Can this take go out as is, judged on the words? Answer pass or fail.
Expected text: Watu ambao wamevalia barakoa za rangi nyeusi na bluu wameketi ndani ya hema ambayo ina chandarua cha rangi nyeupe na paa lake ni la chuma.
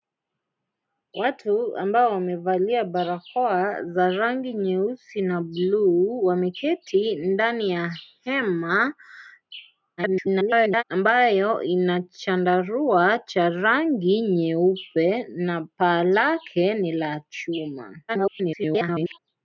fail